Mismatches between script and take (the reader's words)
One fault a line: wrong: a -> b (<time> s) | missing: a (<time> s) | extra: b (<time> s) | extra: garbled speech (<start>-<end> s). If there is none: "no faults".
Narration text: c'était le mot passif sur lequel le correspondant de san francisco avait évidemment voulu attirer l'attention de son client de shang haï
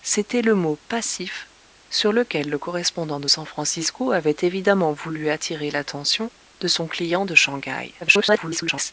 extra: garbled speech (8.0-8.9 s)